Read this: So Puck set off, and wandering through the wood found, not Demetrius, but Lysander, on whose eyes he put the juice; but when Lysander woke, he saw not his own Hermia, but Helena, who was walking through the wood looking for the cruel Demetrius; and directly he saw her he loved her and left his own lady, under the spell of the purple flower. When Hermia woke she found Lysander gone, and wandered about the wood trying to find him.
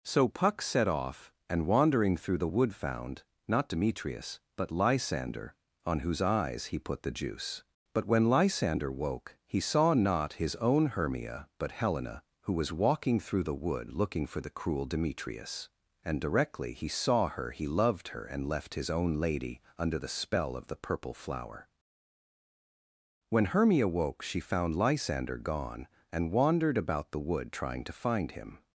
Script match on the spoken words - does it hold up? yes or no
yes